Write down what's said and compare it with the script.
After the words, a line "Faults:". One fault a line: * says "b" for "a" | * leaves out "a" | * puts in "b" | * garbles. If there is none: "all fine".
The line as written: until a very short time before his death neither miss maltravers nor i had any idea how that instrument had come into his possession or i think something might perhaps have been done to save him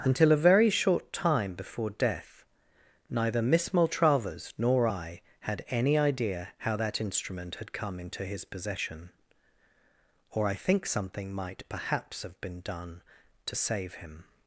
until a very short time before death neither miss maltravers nor i had any idea how that instrument had come into his possession or i think something might perhaps have been done to save him
Faults:
* leaves out "his"